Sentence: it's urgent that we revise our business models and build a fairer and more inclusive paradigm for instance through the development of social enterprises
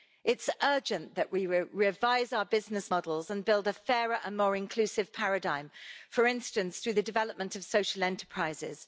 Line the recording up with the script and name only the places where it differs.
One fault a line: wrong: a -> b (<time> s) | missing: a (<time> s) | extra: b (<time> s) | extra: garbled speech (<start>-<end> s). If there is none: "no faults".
no faults